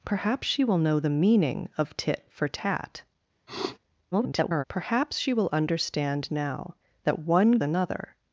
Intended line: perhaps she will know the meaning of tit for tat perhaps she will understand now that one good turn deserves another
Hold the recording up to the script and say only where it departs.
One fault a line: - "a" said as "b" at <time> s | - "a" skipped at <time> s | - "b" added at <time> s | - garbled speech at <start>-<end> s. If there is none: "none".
- garbled speech at 4.1-4.6 s
- "good turn deserves" skipped at 7.6 s